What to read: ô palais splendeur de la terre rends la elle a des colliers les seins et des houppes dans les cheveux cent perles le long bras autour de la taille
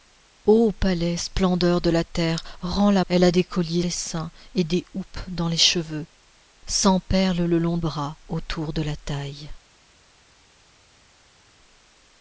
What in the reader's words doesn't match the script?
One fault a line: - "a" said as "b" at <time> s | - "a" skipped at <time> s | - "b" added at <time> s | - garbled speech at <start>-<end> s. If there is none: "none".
none